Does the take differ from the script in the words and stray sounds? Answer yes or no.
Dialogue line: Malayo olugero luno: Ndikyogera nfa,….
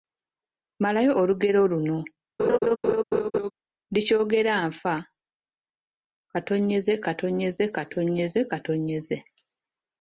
yes